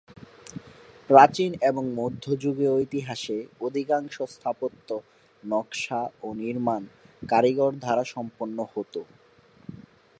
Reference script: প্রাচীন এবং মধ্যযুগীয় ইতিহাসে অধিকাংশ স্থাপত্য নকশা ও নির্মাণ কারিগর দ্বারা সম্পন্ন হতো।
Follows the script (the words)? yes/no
yes